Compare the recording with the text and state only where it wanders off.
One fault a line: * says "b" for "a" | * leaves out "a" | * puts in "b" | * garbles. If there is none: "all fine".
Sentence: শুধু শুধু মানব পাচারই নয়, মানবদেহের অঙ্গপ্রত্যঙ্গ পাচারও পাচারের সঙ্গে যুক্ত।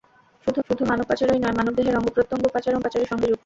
all fine